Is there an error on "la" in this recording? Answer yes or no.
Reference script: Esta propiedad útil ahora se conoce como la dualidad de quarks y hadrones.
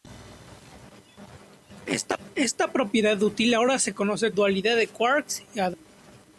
yes